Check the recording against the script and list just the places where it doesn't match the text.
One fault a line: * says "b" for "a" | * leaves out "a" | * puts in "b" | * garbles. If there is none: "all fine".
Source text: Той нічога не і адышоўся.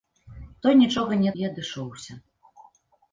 all fine